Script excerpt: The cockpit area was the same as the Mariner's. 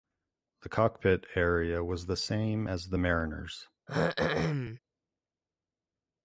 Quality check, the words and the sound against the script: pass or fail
fail